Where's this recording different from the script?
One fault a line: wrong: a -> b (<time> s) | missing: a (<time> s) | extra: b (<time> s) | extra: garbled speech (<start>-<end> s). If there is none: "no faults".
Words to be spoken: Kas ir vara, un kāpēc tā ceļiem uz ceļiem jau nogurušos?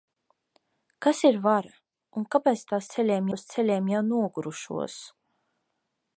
no faults